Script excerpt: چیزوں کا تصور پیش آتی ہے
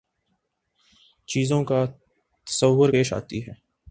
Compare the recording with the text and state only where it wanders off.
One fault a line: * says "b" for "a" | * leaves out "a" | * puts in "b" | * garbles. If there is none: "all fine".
all fine